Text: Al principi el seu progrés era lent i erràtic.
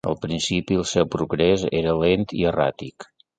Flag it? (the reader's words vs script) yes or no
no